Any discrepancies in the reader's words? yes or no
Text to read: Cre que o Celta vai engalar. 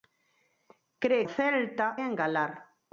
yes